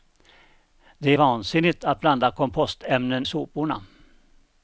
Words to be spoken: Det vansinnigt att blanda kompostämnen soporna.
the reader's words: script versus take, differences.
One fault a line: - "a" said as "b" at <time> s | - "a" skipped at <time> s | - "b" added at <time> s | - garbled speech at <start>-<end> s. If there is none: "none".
none